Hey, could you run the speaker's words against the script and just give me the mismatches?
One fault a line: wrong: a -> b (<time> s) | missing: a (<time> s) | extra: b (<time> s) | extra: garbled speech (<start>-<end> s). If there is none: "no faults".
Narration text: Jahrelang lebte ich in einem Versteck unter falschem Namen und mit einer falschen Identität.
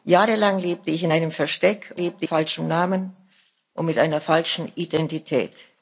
wrong: unter -> lebte (1.9 s)